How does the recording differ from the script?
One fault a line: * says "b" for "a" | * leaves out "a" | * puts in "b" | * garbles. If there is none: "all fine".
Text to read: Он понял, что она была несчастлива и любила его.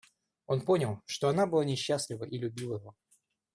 all fine